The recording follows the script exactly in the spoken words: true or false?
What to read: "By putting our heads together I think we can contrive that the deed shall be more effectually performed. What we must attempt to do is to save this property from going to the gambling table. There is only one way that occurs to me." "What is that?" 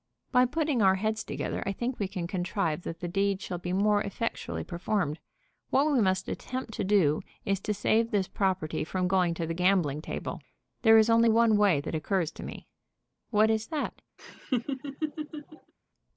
true